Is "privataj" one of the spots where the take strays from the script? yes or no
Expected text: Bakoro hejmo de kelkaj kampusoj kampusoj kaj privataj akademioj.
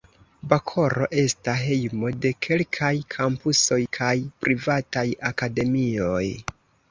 no